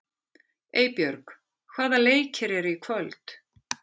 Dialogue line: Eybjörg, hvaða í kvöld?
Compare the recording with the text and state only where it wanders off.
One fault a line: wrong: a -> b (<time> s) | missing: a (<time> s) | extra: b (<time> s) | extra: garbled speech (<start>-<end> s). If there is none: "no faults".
extra: leikir eru (2.0 s)